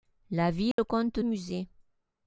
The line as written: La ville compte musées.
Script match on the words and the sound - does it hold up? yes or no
no